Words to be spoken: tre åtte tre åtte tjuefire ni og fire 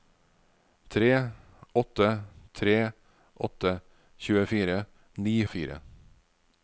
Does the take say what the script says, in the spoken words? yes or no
yes